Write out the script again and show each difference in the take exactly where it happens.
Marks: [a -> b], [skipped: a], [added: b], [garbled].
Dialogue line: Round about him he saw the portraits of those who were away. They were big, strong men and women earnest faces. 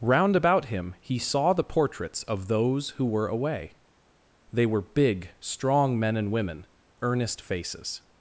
Round about him he saw the portraits of those who were away. They were big, strong men and women earnest faces.